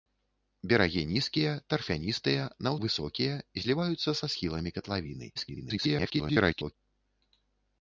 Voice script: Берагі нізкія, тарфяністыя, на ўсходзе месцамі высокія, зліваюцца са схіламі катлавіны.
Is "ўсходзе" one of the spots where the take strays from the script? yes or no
yes